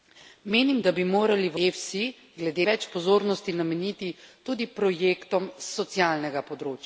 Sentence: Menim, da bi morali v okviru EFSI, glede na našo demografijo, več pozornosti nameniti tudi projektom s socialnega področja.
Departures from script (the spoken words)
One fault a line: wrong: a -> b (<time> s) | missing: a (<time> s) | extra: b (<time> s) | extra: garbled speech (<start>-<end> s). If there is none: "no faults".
missing: okviru (1.6 s)
missing: na našo demografijo (2.7 s)